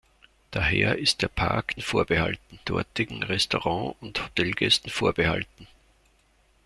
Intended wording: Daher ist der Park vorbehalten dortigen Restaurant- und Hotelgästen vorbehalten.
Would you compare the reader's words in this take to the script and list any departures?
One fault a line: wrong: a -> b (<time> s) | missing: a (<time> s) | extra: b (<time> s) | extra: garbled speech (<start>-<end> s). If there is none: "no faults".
no faults